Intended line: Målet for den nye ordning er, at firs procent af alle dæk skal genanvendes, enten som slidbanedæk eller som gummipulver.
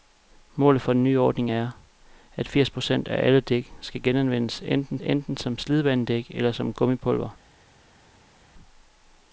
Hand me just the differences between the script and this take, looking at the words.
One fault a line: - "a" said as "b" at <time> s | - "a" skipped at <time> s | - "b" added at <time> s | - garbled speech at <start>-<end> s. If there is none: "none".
- "enten" added at 5.0 s